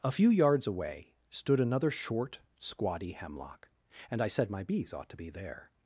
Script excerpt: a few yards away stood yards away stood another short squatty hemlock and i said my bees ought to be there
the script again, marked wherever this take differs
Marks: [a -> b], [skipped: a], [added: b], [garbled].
a few yards away stood [skipped: yards away stood] another short squatty hemlock and i said my bees ought to be there